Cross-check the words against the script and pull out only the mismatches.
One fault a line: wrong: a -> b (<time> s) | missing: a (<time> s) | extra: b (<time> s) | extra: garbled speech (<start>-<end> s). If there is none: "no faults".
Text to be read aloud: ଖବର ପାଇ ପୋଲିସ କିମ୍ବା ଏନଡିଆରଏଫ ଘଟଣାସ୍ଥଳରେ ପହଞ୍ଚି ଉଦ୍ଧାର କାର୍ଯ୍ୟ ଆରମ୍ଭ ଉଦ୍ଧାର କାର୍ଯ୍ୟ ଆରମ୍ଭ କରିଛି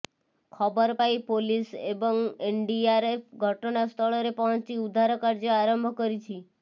wrong: କିମ୍ବା -> ଏବଂ (1.9 s)
missing: ଉଦ୍ଧାର କାର୍ଯ୍ୟ ଆରମ୍ଭ (5.9 s)